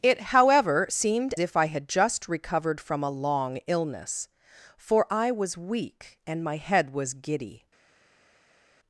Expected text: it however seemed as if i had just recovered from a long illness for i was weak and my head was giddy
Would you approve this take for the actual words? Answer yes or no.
no